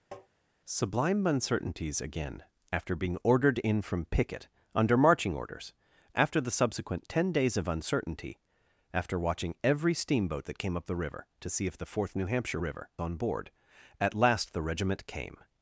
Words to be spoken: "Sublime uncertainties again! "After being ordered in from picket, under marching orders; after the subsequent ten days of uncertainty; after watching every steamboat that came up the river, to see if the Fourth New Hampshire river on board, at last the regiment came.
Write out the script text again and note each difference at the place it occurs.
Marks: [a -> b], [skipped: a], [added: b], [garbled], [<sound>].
[tap] "Sublime uncertainties again! "After being ordered in from picket, under marching orders; after the subsequent ten days of uncertainty; after watching every steamboat that came up the river, to see if the Fourth New Hampshire river on board, at last the regiment came.